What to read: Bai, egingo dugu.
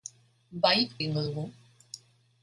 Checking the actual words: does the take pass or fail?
pass